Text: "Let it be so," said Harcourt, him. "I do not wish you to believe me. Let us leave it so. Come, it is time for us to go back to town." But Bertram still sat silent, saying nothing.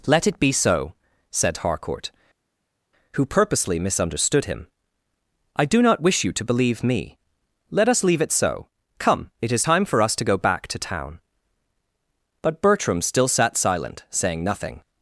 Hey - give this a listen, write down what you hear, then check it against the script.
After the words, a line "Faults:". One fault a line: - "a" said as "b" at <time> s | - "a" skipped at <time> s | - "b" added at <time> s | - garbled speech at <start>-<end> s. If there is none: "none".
"Let it be so," said Harcourt, who purposely misunderstood him. "I do not wish you to believe me. Let us leave it so. Come, it is time for us to go back to town." But Bertram still sat silent, saying nothing.
Faults:
- "who purposely misunderstood" added at 3.1 s